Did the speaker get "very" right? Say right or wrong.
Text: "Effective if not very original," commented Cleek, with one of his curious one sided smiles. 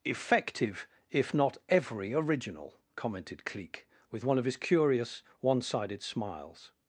wrong